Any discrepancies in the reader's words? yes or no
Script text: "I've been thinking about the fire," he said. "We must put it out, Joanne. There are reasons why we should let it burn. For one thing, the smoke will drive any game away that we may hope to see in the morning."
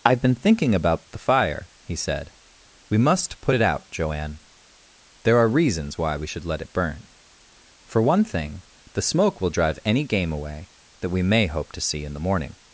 no